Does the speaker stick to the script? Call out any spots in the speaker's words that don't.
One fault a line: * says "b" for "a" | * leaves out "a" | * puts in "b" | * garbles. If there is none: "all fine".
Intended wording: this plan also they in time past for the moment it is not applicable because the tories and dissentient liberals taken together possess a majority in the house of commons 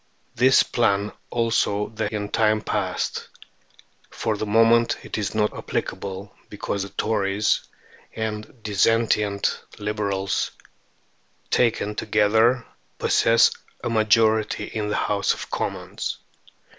all fine